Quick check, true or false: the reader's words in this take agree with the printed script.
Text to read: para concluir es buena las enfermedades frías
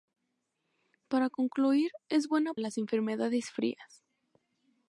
true